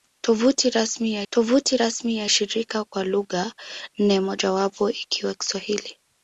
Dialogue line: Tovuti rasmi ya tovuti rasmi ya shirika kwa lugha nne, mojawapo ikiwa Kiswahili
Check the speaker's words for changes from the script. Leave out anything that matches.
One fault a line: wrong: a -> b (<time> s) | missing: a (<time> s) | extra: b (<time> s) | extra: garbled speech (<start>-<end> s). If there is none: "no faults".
no faults